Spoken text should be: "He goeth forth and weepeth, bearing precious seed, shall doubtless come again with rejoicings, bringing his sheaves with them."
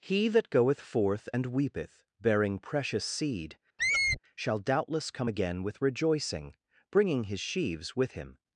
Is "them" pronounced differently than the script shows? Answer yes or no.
yes